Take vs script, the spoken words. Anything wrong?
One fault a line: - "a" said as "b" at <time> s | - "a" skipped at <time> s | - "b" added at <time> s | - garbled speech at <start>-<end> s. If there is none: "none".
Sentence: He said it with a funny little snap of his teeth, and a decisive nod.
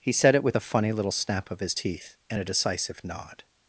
none